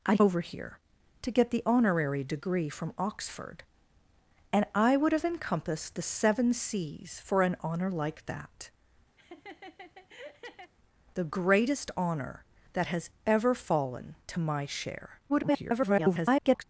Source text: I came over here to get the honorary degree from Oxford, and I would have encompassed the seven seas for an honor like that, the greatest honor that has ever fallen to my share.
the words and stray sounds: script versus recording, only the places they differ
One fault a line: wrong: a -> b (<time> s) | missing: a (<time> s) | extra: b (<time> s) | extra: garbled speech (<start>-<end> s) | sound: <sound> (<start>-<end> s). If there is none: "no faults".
missing: came (0.2 s)
sound: laugh (9.2-10.7 s)
extra: garbled speech (15.3-16.6 s)